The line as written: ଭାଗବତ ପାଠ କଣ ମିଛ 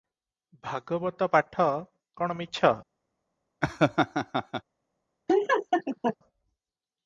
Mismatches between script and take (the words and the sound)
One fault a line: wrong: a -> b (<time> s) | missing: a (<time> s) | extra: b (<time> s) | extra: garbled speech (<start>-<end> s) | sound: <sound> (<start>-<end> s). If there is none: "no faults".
sound: laugh (3.6-4.6 s)
sound: laugh (5.3-6.2 s)